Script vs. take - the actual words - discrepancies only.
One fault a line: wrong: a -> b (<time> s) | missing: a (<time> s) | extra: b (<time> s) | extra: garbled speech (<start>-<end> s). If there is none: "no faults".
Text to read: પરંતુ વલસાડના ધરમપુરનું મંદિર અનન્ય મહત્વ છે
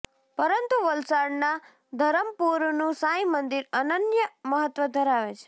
extra: સાંઈ (2.9 s)
extra: ધરાવે (4.9 s)